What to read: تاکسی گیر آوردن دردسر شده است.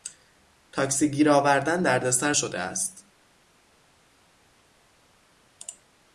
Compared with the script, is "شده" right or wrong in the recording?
right